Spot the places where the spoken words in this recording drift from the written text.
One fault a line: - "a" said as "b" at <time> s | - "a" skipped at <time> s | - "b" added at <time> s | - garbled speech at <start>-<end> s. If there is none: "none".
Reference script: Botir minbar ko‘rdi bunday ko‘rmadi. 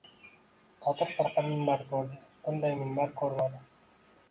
- "firqa" added at 1.2 s
- "minbar" added at 2.8 s